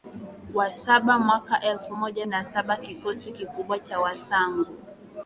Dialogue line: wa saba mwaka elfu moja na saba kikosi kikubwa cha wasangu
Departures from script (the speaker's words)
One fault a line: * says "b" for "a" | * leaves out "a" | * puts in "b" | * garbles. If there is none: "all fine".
all fine